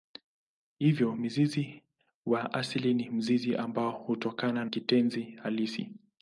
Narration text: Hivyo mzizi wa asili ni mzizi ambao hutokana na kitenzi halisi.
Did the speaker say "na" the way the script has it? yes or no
no